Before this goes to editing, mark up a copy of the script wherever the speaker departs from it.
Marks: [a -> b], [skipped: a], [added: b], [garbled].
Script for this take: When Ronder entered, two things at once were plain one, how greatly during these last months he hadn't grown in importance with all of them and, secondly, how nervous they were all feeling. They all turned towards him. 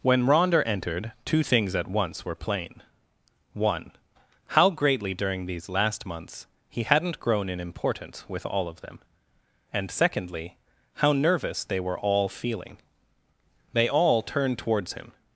When Ronder entered, two things at once were plain one, how greatly during these last months he hadn't grown in importance with all of them and, secondly, how nervous they were all feeling. They all turned towards him.